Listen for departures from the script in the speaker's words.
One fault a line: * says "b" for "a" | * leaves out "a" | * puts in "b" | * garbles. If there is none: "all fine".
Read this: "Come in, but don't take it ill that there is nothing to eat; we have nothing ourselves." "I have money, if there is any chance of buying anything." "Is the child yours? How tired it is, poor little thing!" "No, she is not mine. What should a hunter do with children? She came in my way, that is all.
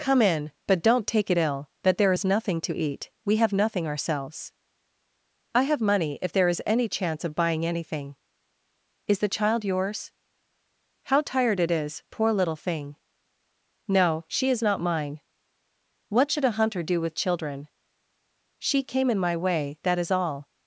all fine